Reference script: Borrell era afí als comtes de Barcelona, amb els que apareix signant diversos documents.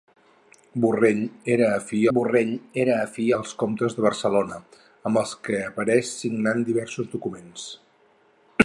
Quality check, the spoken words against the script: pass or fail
fail